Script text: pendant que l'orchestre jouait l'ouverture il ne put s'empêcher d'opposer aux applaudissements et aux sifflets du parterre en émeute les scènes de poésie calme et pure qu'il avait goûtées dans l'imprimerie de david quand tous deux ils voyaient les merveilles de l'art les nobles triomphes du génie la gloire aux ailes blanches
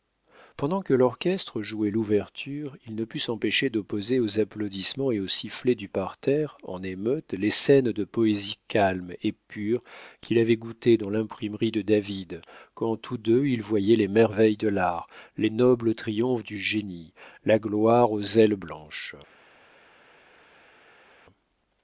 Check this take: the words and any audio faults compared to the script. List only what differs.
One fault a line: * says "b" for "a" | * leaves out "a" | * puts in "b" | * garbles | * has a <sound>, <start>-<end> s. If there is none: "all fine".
all fine